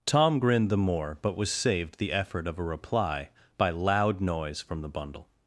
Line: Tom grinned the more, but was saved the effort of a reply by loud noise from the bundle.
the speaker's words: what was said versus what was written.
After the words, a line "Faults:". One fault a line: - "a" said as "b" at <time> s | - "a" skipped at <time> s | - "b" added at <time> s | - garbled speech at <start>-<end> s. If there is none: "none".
Tom grinned the more, but was saved the effort of a reply by loud noise from the bundle.
Faults:
none